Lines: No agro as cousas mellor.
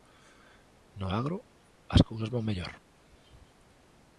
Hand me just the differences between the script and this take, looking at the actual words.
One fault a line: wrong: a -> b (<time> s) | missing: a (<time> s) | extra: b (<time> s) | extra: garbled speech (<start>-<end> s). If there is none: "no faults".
extra: van (2.3 s)